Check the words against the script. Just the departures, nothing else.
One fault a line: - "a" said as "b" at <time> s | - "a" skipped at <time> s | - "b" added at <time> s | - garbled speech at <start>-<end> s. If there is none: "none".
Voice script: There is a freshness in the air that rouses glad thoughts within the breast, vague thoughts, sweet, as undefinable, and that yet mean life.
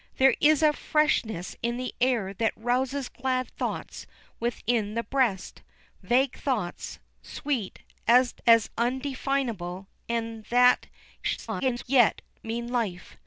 - garbled speech at 11.2-11.8 s